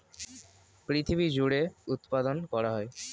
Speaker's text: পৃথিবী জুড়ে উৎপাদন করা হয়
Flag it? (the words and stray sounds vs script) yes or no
no